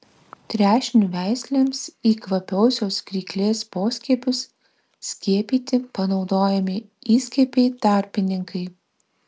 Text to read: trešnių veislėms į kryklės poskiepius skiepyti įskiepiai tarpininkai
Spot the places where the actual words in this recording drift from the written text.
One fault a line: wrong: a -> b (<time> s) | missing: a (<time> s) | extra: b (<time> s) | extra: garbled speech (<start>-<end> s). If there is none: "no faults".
extra: kvapiosios (2.2 s)
extra: panaudojami (6.0 s)